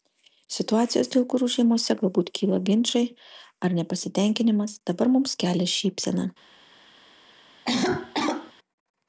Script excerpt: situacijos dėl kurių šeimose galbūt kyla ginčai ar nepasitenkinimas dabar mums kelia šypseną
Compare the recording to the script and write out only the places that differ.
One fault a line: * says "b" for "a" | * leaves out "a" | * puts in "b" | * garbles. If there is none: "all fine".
all fine